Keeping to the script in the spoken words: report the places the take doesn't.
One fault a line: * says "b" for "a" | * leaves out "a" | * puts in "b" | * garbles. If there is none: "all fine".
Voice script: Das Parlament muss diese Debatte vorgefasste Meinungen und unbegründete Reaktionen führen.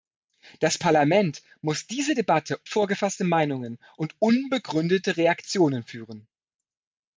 all fine